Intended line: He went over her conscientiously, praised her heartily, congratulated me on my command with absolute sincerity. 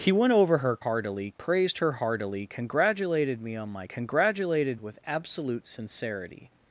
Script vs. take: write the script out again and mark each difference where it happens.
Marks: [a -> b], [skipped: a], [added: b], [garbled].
He went over her [conscientiously, -> heartily] praised her heartily, congratulated me on my [command -> congratulated] with absolute sincerity.